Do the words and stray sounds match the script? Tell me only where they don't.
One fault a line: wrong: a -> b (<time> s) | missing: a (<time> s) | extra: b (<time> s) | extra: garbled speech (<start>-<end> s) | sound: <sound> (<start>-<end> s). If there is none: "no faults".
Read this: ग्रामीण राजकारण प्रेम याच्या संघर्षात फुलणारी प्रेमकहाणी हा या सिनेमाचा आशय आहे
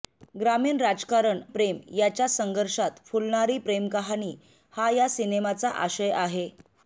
no faults